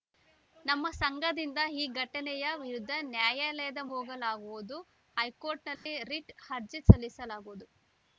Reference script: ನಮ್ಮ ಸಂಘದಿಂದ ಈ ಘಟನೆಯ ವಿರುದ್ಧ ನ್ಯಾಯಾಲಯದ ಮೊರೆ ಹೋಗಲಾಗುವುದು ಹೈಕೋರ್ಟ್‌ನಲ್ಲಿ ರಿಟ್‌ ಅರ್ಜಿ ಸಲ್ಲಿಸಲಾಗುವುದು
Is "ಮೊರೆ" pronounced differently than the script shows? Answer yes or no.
yes